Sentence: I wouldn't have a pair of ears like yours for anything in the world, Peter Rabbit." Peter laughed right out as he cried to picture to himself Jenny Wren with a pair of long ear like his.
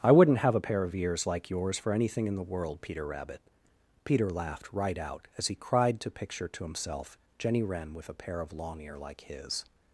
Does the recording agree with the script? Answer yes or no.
yes